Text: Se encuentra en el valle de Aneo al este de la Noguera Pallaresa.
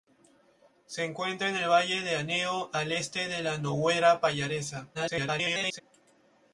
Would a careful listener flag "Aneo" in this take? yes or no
no